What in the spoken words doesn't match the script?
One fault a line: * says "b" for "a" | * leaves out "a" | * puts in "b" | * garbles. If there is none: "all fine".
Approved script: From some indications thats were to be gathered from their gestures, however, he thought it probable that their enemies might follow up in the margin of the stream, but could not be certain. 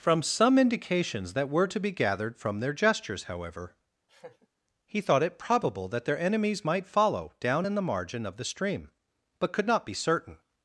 * says "that" for "thats"
* says "down" for "up"